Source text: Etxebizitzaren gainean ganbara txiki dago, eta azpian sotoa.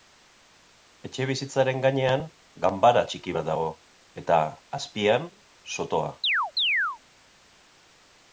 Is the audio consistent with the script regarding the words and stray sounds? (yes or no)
no